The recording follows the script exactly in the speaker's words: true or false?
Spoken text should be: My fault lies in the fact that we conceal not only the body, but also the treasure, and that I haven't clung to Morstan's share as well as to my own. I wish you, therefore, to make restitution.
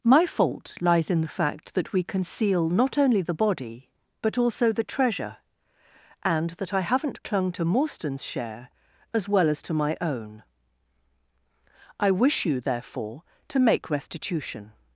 true